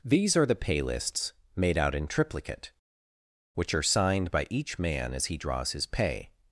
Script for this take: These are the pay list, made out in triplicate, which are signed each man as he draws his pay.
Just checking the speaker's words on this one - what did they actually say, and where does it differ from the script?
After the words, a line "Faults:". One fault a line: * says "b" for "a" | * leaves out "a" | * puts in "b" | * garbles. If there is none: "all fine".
These are the pay lists, made out in triplicate, which are signed by each man as he draws his pay.
Faults:
* says "lists" for "list"
* puts in "by"